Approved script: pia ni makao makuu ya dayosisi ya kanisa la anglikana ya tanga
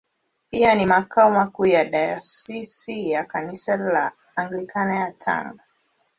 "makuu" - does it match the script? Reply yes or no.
yes